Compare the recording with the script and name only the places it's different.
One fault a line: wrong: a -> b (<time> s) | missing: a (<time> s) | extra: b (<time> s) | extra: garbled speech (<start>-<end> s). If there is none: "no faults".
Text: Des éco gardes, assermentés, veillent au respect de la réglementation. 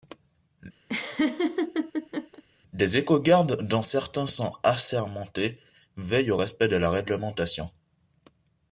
extra: dont certains sont (3.6 s)